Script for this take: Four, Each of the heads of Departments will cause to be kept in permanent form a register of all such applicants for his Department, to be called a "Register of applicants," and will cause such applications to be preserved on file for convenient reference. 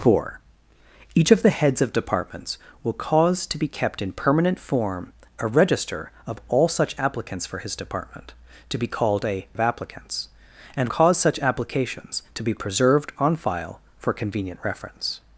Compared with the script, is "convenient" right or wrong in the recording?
right